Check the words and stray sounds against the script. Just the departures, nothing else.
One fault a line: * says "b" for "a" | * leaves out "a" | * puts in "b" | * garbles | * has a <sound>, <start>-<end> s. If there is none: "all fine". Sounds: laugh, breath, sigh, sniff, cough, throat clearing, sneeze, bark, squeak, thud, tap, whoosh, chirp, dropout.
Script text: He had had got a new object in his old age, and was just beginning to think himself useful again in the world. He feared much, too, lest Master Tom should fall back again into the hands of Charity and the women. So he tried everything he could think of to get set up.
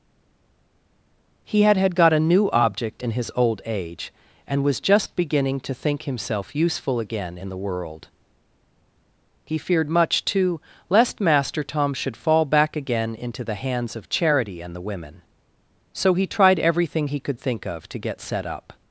all fine